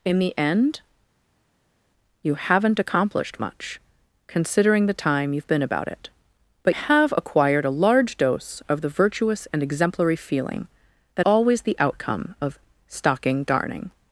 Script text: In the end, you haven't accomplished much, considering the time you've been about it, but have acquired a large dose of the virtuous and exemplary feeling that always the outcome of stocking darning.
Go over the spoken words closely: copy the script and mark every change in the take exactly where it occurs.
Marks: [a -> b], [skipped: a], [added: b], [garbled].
In the end, you haven't accomplished much, considering the time you've been about it, but have acquired a large dose of the virtuous and exemplary feeling that always the outcome of stocking darning.